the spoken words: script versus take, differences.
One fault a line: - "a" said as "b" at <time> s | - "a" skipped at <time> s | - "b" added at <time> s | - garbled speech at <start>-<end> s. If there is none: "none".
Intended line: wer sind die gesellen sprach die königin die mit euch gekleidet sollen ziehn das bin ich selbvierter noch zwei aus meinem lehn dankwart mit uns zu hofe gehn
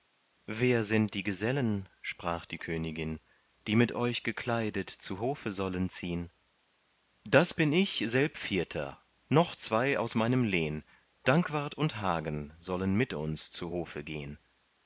- "zu hofe" added at 4.9 s
- "und hagen sollen" added at 11.7 s